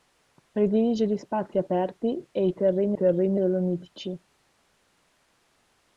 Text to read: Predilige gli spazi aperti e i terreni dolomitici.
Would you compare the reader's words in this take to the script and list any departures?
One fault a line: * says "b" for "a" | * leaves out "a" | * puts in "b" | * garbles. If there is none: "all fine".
* puts in "terreni"